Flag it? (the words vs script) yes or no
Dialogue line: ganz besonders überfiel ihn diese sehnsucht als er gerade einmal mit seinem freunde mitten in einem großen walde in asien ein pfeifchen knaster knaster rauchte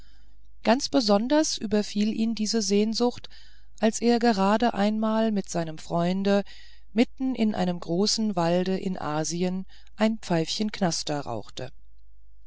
yes